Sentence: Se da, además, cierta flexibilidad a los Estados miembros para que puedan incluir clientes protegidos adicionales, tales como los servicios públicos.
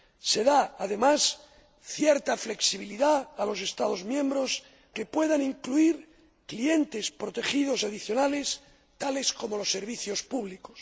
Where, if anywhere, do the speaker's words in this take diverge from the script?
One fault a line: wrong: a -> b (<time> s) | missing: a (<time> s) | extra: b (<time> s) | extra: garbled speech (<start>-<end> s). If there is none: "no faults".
missing: para (4.6 s)